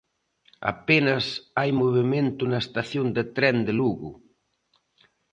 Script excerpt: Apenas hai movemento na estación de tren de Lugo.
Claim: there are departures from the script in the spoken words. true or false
false